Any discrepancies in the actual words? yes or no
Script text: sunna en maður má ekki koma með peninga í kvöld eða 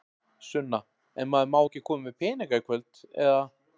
no